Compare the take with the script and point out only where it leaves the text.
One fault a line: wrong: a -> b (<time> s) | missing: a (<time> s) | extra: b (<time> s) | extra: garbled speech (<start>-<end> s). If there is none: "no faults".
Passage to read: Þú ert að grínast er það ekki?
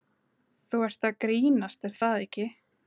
no faults